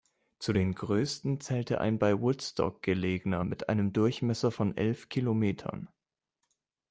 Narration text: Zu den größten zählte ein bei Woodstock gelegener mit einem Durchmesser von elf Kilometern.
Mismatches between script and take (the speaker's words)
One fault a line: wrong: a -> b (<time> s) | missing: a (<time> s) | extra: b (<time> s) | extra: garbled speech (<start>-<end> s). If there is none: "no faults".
no faults